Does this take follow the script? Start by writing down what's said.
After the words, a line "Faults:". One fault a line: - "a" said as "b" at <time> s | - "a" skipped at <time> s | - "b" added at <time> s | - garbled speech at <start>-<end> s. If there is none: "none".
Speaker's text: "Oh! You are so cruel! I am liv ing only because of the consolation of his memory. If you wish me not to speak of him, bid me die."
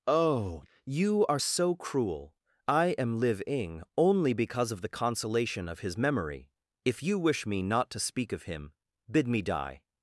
"Oh! You are so cruel! I am liv ing only because of the consolation of his memory. If you wish me not to speak of him, bid me die."
Faults:
none